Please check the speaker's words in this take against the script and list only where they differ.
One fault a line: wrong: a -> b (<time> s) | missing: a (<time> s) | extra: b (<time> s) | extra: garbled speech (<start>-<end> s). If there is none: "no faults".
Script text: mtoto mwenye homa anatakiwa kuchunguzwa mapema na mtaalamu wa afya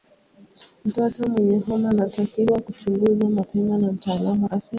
no faults